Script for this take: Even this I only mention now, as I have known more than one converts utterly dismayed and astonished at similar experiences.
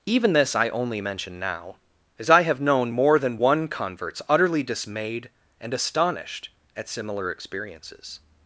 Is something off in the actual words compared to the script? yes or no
no